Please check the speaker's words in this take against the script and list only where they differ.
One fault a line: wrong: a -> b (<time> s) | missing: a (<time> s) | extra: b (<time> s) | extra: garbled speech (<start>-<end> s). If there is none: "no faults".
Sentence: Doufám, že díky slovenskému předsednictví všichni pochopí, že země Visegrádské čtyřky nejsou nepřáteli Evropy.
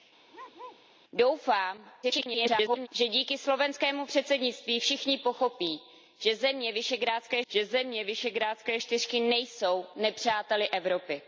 extra: garbled speech (2.0-2.9 s)
extra: že země Visegrádské (7.5 s)